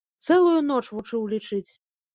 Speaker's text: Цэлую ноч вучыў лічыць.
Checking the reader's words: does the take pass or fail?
pass